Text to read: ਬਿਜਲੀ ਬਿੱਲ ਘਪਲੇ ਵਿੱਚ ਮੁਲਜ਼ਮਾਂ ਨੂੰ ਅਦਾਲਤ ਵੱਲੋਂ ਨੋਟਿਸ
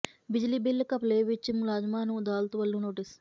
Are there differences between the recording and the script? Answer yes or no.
no